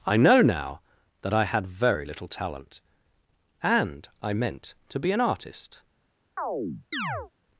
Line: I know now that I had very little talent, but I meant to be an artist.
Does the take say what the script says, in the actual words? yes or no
no